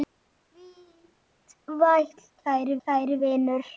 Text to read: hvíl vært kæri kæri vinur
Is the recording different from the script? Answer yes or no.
no